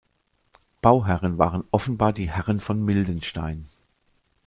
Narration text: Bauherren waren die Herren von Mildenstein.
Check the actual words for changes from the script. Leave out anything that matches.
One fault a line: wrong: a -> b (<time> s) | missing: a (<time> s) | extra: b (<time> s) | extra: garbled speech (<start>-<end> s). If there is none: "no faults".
extra: offenbar (1.7 s)